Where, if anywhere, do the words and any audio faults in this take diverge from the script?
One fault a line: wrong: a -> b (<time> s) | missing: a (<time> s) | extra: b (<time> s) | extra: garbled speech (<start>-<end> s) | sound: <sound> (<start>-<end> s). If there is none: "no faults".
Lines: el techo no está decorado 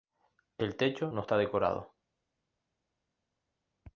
no faults